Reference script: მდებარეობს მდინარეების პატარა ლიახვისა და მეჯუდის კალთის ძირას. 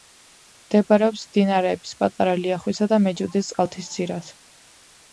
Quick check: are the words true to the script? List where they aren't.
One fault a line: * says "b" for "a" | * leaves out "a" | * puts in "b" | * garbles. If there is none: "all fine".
all fine